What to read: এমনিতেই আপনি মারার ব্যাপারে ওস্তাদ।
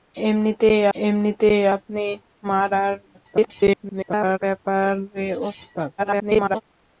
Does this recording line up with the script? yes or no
no